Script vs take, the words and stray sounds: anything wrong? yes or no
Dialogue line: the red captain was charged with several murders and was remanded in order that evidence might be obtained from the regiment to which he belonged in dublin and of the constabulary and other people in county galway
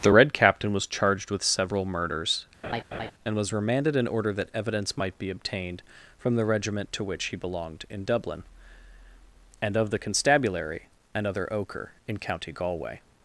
yes